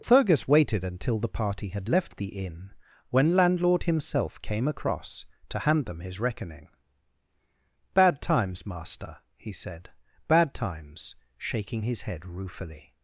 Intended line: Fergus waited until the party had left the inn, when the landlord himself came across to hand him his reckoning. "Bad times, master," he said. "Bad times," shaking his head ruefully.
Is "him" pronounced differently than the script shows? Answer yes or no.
yes